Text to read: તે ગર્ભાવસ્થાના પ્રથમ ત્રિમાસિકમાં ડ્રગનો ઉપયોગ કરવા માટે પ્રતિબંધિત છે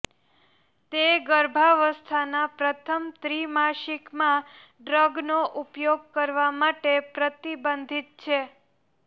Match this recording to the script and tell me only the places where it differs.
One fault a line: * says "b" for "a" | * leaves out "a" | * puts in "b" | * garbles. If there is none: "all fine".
all fine